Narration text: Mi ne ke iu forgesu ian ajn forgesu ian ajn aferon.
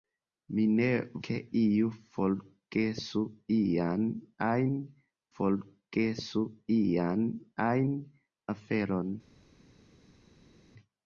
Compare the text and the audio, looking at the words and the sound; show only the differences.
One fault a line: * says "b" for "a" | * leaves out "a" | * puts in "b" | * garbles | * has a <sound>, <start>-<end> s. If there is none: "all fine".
all fine